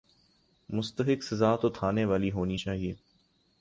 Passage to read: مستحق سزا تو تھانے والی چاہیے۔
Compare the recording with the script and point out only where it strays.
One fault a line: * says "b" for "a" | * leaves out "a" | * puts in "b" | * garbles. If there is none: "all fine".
* puts in "ہونی"